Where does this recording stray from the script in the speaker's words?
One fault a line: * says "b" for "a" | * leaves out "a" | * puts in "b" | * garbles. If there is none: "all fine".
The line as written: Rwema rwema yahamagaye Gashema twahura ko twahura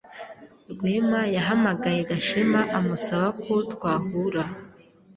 * leaves out "rwema"
* says "amusaba" for "twahura"